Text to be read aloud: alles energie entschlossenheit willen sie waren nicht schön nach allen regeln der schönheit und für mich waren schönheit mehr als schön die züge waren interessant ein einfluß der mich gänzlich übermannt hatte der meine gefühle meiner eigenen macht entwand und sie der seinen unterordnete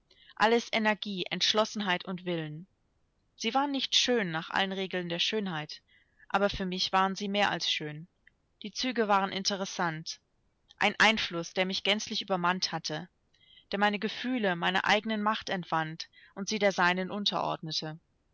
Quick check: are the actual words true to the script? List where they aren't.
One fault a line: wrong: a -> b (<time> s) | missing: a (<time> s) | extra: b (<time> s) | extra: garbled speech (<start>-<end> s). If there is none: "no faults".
extra: und (2.0 s)
wrong: und -> aber (6.3 s)
wrong: schönheit -> sie (7.2 s)